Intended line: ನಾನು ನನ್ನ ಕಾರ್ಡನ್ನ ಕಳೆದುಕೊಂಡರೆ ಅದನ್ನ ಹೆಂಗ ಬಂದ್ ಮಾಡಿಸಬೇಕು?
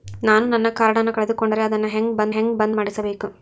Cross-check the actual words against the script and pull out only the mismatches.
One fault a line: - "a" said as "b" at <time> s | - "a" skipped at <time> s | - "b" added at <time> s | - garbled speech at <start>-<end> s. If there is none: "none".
- "ಹೆಂಗ ಬಂದ್" added at 2.3 s